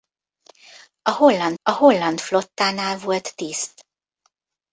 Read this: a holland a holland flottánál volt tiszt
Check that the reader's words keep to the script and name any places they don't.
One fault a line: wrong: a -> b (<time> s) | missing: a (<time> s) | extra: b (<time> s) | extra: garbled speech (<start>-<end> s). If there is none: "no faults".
no faults